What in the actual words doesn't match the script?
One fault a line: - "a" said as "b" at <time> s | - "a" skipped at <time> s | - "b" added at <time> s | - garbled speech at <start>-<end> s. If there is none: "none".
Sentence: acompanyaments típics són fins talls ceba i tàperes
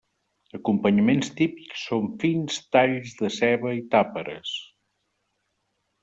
- "de" added at 3.2 s